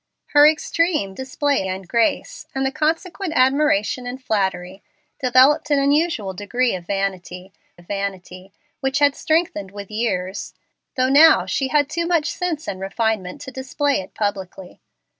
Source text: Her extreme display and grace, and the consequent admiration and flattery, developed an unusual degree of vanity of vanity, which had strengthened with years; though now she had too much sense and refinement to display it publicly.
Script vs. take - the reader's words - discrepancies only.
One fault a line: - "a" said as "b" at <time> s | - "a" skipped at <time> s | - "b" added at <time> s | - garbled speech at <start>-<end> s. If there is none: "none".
none